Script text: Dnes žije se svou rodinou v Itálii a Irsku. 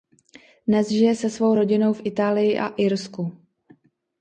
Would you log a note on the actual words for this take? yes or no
no